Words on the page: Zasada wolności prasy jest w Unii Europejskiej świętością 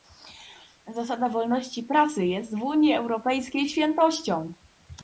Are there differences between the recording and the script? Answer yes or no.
no